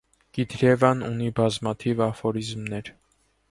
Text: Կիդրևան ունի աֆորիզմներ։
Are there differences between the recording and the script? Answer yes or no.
yes